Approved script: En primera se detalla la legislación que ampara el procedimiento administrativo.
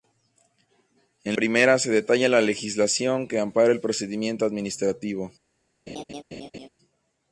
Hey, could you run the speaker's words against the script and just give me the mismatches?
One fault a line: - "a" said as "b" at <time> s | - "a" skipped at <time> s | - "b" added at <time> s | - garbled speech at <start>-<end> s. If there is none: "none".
none